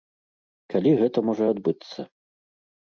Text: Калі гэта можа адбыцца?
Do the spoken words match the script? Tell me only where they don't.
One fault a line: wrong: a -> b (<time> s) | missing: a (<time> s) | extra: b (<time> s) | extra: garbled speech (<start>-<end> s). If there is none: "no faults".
no faults